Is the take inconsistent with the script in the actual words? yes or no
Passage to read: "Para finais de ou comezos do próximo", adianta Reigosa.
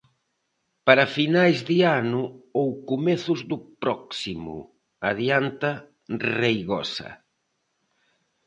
yes